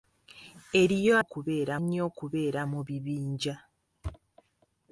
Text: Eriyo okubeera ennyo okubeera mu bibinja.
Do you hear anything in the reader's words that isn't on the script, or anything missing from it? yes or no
no